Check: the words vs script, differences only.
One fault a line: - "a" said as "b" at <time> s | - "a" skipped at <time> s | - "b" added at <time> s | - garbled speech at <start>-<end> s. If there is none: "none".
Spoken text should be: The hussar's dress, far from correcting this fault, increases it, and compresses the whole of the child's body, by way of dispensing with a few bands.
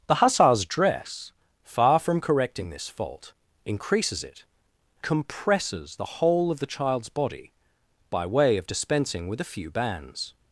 - "and" skipped at 4.4 s